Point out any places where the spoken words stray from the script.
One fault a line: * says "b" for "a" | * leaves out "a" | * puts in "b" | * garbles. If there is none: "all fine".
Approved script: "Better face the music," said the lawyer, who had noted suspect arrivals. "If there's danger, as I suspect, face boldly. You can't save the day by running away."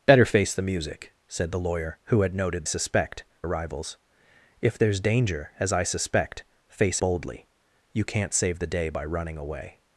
all fine